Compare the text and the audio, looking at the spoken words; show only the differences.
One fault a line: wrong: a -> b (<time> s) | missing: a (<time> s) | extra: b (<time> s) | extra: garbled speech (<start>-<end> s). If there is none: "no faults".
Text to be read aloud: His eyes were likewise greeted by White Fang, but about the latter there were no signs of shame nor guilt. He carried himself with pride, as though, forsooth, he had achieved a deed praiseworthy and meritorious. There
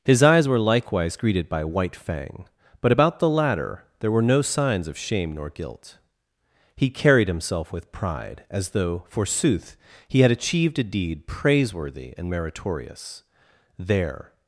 no faults